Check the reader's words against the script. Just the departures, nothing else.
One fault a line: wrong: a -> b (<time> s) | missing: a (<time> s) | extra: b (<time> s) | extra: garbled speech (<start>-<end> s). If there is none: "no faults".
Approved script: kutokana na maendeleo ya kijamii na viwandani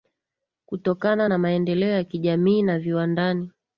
no faults